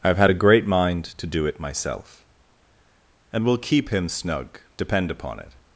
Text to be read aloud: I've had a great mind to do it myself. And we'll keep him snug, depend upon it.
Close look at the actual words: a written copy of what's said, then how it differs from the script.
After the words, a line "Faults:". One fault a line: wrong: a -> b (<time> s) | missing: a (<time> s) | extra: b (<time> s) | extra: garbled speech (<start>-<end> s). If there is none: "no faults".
I've had a great mind to do it myself. And we'll keep him snug, depend upon it.
Faults:
no faults